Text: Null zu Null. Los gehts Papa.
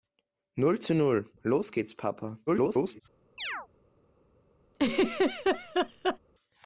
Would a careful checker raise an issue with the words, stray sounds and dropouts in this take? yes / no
yes